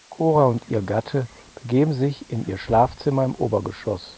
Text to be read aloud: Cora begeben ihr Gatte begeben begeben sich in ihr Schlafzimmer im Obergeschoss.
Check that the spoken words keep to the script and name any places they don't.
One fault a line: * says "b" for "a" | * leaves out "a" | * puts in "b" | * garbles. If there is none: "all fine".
* says "und" for "begeben"
* leaves out "begeben"